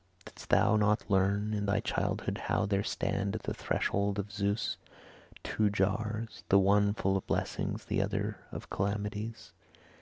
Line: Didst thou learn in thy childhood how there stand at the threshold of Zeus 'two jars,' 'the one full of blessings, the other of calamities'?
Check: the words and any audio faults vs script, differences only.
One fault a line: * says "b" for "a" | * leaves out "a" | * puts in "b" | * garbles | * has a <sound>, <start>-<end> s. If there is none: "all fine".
* puts in "not"